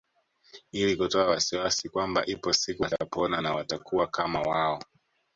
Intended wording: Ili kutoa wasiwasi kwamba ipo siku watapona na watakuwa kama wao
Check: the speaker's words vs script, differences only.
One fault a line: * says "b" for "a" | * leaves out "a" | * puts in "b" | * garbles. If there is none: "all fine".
all fine